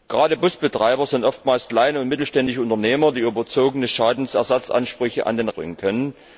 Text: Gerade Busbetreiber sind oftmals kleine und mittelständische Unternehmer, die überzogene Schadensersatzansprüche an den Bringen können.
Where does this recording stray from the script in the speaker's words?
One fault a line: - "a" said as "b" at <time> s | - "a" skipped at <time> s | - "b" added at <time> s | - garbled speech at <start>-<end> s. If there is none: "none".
none